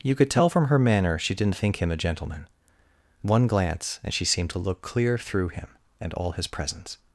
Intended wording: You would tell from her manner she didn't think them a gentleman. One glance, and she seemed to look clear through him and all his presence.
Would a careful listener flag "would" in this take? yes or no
yes